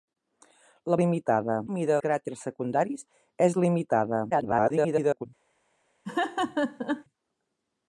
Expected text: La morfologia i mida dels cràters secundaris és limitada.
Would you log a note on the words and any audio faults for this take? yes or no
yes